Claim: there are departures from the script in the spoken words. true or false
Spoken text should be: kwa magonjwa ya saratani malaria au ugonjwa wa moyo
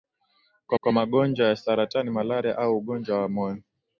true